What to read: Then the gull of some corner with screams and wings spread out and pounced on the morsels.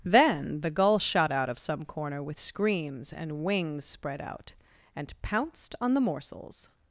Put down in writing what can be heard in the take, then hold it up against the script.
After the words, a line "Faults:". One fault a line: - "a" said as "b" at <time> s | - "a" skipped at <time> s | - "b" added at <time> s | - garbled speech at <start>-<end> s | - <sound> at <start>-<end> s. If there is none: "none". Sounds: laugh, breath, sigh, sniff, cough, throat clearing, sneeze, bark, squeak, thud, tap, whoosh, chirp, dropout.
Then the gull shot out of some corner with screams and wings spread out and pounced on the morsels.
Faults:
- "shot out" added at 1.0 s